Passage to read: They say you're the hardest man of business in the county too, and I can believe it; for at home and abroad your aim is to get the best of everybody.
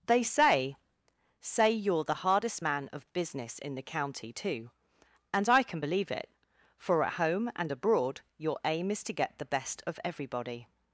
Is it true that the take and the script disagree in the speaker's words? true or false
true